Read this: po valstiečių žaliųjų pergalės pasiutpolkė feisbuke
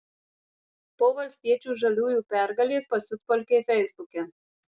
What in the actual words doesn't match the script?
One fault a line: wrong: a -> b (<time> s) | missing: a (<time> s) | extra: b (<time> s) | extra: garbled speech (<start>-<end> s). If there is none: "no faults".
no faults